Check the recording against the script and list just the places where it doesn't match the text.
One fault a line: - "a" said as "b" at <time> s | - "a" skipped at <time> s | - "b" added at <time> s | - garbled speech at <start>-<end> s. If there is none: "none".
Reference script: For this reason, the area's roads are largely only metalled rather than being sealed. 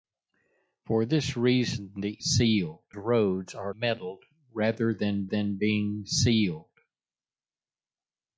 - "area's" said as "sealed" at 2.2 s
- "largely only" skipped at 3.7 s
- "than" added at 5.3 s